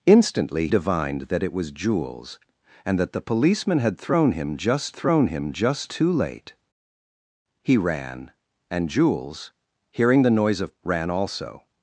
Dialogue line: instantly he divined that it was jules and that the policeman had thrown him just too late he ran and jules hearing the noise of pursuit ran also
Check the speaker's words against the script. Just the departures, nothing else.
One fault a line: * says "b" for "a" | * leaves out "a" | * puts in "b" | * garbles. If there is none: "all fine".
* leaves out "he"
* puts in "thrown him just"
* leaves out "pursuit"